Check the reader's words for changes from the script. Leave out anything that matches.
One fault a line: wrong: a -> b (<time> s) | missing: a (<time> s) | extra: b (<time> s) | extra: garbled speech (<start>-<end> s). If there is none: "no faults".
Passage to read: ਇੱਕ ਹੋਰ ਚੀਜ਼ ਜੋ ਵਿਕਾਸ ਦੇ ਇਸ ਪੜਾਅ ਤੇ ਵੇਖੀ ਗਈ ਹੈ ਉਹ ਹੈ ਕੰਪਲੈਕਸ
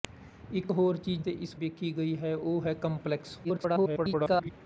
missing: ਜੋ ਵਿਕਾਸ (1.2 s)
missing: ਪੜਾਅ ਤੇ (1.5 s)
extra: garbled speech (3.4-4.5 s)